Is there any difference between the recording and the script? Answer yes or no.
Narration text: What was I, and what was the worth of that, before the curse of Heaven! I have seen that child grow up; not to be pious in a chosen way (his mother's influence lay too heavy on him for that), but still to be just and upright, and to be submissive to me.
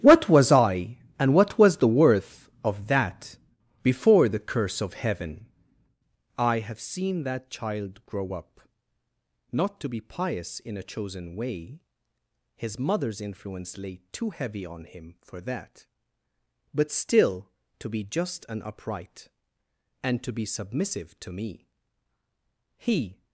yes